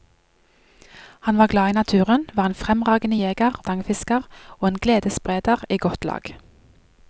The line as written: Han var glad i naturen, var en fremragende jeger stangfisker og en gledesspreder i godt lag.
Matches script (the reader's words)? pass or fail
pass